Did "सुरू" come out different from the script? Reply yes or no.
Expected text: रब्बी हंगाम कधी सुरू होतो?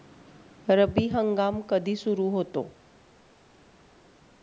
no